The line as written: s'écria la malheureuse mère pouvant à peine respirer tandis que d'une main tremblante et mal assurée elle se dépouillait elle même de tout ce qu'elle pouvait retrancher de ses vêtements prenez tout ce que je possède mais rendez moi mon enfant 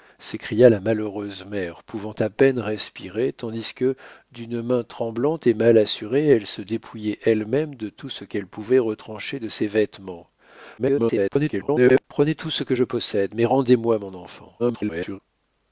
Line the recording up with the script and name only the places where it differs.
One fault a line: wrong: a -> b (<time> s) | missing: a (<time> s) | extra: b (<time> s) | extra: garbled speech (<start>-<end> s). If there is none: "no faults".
extra: garbled speech (10.8-12.0 s)
extra: garbled speech (14.6-15.2 s)